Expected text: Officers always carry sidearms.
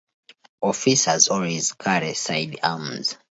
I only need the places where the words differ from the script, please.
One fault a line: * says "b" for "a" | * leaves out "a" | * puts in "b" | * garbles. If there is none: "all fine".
all fine